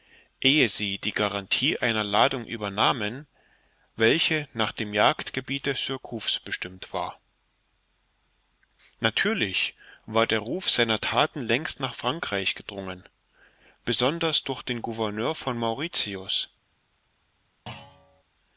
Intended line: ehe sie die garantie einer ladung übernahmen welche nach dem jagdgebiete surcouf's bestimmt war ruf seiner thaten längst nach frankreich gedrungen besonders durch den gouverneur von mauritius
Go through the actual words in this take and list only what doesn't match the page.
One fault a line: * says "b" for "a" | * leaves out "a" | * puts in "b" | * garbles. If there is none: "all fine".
* puts in "natürlich war der"